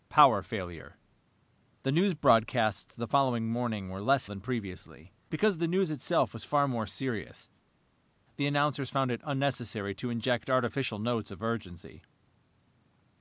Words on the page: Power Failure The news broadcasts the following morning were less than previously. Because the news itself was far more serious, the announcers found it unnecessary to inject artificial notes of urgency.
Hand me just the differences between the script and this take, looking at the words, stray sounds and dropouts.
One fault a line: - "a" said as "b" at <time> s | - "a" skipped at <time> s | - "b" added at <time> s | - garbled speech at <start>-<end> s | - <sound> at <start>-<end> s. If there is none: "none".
none